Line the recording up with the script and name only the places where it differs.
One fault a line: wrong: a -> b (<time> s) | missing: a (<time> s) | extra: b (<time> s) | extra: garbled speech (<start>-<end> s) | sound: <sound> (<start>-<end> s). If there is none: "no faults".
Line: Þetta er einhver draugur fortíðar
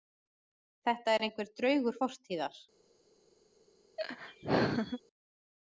sound: laugh (4.0-5.0 s)